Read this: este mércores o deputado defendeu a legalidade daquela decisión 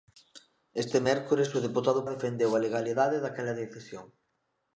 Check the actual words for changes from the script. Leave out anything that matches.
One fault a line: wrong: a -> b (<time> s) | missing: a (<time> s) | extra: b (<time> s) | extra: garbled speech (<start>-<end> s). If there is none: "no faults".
no faults